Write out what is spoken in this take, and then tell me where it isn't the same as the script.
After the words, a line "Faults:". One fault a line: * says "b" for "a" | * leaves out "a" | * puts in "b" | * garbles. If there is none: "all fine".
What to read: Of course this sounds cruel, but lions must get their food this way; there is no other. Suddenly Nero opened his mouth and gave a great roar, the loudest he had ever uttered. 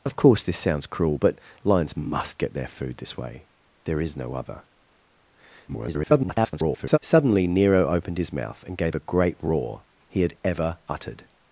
Of course this sounds cruel, but lions must get their food this way; there is no other. [garbled] Suddenly Nero opened his mouth and gave a great roar, he had ever uttered.
Faults:
* garbles
* leaves out "the loudest"